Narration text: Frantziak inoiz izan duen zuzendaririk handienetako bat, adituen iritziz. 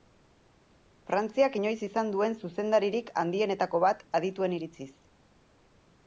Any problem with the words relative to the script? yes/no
no